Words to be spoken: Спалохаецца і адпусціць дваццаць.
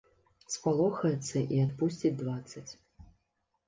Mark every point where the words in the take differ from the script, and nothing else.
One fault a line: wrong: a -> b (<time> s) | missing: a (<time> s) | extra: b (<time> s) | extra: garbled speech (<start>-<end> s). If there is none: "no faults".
no faults